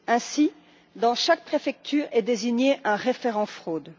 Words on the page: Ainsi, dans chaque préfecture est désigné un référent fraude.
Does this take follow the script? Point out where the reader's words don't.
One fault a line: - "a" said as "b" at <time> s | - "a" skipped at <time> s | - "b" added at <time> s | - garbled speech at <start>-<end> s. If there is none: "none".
none